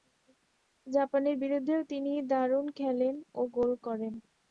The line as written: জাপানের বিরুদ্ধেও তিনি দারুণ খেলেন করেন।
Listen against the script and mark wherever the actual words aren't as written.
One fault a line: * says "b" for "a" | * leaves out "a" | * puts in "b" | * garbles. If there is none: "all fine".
* puts in "ও গোল"